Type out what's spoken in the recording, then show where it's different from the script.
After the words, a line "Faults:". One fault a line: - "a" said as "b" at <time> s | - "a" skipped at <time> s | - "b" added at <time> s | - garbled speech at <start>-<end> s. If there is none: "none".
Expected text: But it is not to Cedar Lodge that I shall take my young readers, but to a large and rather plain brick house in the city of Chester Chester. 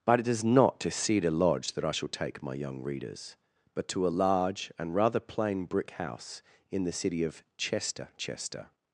But it is not to Cedar Lodge that I shall take my young readers, but to a large and rather plain brick house in the city of Chester Chester.
Faults:
none